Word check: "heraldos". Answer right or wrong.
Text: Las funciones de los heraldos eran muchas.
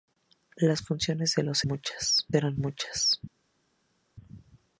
wrong